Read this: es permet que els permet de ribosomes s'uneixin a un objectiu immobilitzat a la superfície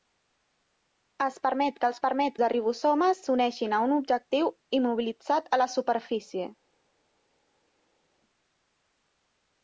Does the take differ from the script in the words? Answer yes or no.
no